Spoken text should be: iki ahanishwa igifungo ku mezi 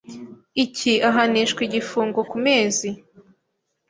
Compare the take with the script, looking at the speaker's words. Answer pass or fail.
pass